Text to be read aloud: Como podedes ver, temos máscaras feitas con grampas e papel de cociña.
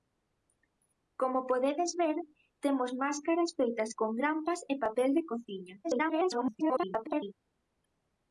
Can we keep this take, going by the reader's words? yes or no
no